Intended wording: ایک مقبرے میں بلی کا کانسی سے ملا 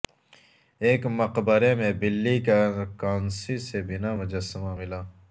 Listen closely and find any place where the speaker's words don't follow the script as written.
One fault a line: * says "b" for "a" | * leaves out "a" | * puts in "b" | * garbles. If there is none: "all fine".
* puts in "بنا مجسمہ"